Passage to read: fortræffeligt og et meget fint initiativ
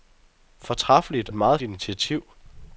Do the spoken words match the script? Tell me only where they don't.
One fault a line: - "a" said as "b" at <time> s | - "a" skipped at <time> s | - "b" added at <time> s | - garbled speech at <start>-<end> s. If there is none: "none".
- "og" skipped at 1.3 s
- "fint" skipped at 1.6 s